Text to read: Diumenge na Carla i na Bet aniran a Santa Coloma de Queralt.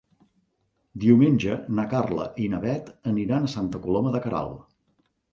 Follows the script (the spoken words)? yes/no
yes